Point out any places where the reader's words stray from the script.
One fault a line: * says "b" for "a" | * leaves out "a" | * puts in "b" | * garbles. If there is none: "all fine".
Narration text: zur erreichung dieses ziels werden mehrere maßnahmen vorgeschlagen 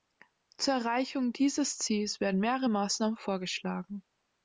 all fine